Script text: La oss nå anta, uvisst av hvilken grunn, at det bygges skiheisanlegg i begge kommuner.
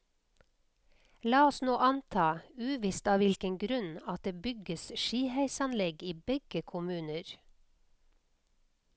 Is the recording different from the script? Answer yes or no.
no